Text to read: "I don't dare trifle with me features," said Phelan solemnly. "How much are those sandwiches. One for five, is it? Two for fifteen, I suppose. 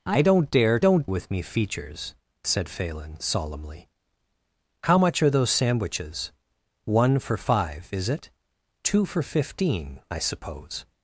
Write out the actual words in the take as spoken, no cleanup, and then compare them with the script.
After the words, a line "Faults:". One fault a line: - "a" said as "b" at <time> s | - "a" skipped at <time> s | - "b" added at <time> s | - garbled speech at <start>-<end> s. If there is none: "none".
"I don't dare don't with me features," said Phelan solemnly. "How much are those sandwiches. One for five, is it? Two for fifteen, I suppose.
Faults:
- "trifle" said as "don't" at 0.8 s